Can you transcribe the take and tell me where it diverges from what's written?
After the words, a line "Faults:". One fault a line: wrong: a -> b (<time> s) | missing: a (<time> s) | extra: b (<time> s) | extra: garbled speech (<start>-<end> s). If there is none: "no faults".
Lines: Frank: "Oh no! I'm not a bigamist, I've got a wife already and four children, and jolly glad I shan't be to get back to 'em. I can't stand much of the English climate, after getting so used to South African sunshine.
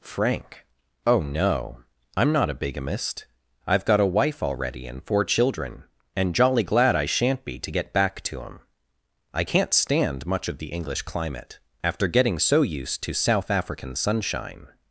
Frank: "Oh no! I'm not a bigamist, I've got a wife already and four children, and jolly glad I shan't be to get back to 'em. I can't stand much of the English climate, after getting so used to South African sunshine.
Faults:
no faults